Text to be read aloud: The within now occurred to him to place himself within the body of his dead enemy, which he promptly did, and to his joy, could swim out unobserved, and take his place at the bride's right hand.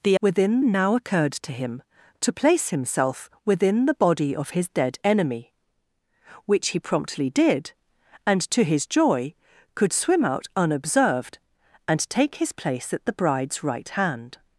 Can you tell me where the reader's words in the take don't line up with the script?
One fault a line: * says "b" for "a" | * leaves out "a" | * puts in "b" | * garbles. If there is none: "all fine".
all fine